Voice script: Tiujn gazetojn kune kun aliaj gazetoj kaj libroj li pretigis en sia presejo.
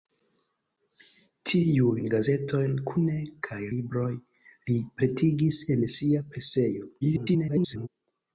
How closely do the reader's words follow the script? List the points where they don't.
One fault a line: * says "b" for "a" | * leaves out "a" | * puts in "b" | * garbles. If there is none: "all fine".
* leaves out "kun aliaj gazetoj"
* garbles